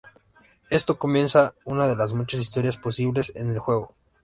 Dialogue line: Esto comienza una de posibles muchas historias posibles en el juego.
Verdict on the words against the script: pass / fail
fail